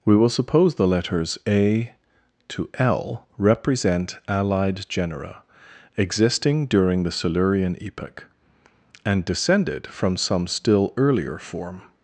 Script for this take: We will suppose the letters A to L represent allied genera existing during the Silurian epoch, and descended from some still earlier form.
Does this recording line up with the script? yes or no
yes